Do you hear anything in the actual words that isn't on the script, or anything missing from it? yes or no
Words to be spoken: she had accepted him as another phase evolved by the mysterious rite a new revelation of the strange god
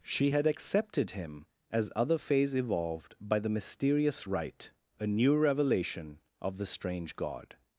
yes